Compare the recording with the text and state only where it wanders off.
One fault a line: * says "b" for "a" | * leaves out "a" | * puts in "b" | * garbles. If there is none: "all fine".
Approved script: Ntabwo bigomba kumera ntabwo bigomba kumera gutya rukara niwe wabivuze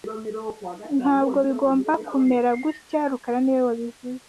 * leaves out "ntabwo bigomba kumera"